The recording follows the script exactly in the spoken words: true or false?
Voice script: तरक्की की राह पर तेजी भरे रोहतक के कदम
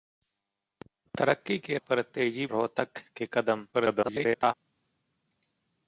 false